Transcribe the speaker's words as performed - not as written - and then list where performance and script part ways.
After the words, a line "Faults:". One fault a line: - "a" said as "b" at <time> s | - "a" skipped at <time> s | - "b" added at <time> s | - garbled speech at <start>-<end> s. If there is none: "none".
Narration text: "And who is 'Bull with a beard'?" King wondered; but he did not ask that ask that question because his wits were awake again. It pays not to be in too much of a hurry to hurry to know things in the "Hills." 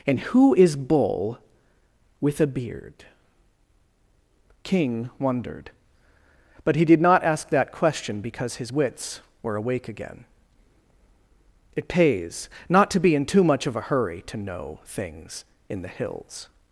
"And who is 'Bull with a beard'?" King wondered; but he did not ask that question because his wits were awake again. It pays not to be in too much of a hurry to know things in the "Hills."
Faults:
- "ask that" skipped at 7.7 s
- "hurry to" skipped at 14.4 s